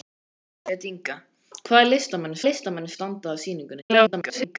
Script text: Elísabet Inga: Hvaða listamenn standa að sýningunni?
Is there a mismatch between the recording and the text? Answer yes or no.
yes